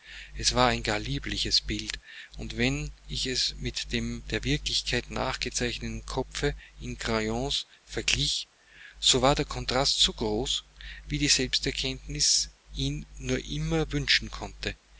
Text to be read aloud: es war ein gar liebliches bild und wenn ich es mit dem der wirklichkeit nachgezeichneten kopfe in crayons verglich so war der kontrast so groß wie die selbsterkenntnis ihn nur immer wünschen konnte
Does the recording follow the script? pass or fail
pass